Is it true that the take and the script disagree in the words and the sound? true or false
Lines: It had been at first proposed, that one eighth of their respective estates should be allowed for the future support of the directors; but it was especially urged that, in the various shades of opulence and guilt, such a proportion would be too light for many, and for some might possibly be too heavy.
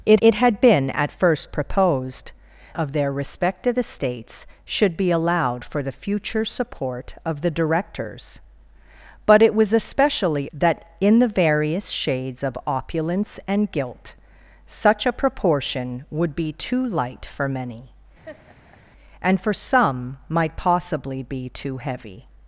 true